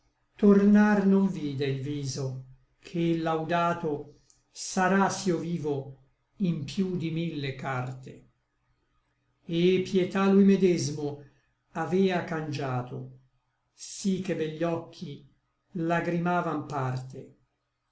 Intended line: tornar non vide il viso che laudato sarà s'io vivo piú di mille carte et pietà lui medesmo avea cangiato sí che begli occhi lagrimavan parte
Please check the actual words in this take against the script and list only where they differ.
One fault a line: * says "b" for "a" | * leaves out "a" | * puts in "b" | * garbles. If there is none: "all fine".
* puts in "in"